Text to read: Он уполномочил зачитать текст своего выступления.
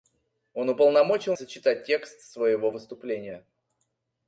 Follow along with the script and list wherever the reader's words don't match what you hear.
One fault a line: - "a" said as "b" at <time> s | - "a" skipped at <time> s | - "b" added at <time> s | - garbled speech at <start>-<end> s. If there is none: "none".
none